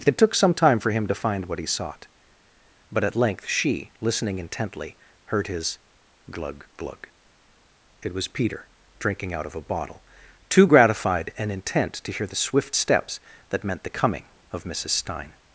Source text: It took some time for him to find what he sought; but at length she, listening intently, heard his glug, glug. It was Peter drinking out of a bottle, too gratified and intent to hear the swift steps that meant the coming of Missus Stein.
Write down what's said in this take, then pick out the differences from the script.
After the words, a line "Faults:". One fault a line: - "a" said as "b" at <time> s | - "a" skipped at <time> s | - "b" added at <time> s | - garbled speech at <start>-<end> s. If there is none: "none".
It took some time for him to find what he sought; but at length she, listening intently, heard his glug, glug. It was Peter drinking out of a bottle, too gratified and intent to hear the swift steps that meant the coming of Missus Stein.
Faults:
none